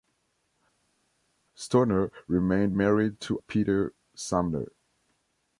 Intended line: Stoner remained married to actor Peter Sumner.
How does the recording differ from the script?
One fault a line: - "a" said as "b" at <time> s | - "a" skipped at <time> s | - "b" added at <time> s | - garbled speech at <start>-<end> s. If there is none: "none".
- "actor" skipped at 3.4 s